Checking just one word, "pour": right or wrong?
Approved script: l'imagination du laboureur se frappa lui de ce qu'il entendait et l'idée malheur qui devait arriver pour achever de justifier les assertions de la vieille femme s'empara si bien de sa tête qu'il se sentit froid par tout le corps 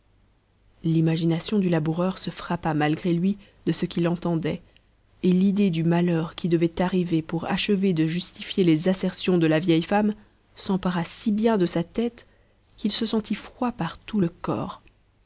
right